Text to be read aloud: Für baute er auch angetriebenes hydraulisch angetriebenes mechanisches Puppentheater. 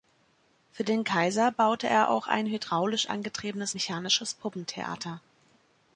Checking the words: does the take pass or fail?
fail